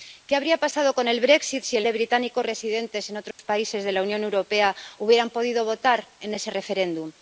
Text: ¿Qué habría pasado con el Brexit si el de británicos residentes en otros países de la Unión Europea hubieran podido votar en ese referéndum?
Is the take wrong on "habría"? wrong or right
right